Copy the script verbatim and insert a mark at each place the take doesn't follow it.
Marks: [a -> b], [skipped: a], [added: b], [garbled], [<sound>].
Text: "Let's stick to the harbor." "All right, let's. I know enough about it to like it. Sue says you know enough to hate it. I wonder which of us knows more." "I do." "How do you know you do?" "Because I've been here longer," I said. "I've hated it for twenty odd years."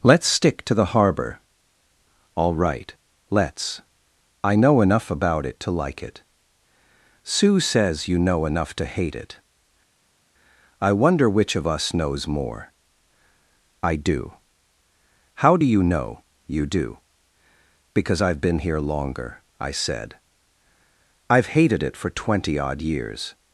"Let's stick to the harbor." "All right, let's. I know enough about it to like it. Sue says you know enough to hate it. I wonder which of us knows more." "I do." "How do you know you do?" "Because I've been here longer," I said. "I've hated it for twenty odd years."